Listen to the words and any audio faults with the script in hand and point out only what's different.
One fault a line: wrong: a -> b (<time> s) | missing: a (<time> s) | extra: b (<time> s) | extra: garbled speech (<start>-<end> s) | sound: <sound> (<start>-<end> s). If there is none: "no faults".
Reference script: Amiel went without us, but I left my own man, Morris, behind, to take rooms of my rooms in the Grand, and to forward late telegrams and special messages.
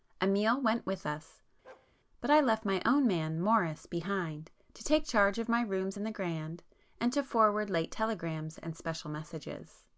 wrong: without -> with (0.9 s)
sound: bark (1.6-1.9 s)
wrong: rooms -> charge (5.0 s)